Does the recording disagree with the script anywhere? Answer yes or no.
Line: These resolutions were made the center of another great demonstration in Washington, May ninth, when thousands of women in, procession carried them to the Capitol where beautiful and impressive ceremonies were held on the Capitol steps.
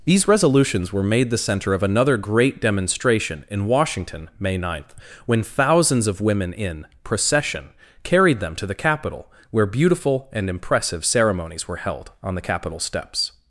no